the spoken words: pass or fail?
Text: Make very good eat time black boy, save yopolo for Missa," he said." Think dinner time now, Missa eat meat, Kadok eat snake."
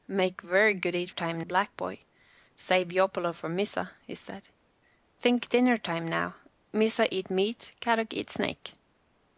pass